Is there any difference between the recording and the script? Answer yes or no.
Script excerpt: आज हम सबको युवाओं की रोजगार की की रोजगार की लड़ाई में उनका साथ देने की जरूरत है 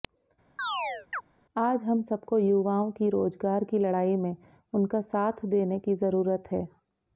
yes